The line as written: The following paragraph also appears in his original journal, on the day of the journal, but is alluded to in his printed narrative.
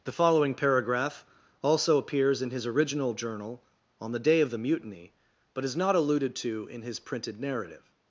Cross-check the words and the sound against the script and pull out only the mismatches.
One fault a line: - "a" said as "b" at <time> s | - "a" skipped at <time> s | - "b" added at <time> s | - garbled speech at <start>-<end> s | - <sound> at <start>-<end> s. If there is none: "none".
- "journal" said as "mutiny" at 4.6 s
- "not" added at 5.8 s